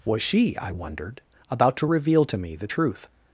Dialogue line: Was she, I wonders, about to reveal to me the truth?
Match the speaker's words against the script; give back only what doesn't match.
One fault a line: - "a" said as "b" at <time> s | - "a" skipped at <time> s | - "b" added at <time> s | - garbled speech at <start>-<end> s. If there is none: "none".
- "wonders" said as "wondered" at 0.7 s